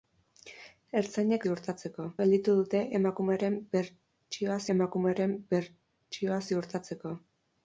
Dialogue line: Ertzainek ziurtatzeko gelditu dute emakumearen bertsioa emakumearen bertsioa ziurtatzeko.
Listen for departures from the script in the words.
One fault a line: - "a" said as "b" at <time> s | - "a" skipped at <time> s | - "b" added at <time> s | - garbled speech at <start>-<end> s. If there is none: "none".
none